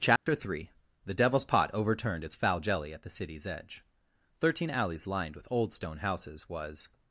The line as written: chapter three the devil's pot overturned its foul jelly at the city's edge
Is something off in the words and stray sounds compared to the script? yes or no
yes